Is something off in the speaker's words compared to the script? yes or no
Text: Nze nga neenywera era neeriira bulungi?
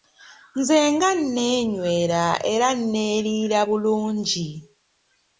no